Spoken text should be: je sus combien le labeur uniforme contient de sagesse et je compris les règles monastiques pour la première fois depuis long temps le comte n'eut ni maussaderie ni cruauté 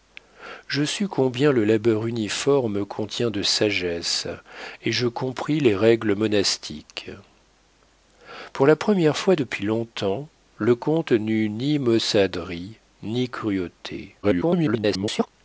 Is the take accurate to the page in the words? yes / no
no